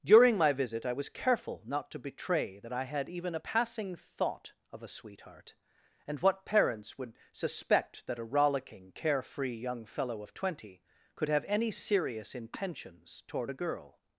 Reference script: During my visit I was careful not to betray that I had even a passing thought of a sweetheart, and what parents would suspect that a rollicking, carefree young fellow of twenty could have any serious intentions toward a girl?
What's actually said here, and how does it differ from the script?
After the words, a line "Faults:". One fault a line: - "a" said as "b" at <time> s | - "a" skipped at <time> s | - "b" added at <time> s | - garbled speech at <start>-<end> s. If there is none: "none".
During my visit I was careful not to betray that I had even a passing thought of a sweetheart, and what parents would suspect that a rollicking, carefree young fellow of twenty could have any serious intentions toward a girl?
Faults:
none